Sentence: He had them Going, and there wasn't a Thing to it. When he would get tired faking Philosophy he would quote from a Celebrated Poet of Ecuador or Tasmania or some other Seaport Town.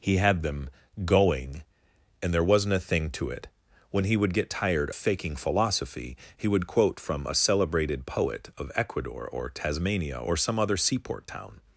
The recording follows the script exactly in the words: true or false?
true